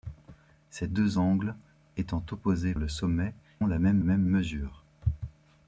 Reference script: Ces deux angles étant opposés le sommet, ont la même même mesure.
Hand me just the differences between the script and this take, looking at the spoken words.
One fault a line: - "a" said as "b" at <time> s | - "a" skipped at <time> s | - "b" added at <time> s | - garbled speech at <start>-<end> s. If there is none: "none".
none